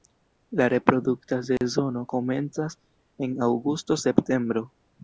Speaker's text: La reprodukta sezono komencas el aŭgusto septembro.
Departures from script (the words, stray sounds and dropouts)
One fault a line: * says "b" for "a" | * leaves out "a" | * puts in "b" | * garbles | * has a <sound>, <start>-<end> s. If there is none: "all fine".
* has a dropout, 1.6-1.6 s
* says "en" for "el"